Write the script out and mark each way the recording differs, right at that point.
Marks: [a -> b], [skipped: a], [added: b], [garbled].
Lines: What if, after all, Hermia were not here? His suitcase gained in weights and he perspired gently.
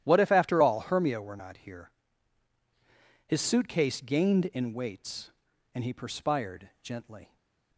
What if, after all, Hermia were not here? His suitcase gained in weights and he perspired gently.